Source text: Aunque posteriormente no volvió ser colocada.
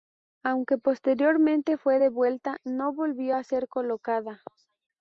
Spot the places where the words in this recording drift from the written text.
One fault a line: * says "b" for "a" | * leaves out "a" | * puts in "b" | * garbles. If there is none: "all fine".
* puts in "fue devuelta"
* puts in "a"